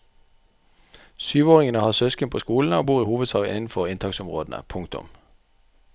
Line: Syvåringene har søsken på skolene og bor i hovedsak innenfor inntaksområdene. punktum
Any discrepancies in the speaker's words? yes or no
no